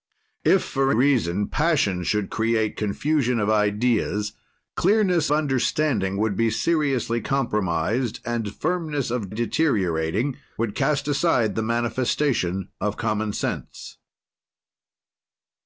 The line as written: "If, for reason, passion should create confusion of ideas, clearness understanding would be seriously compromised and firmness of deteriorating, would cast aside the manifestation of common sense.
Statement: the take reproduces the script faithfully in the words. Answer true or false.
true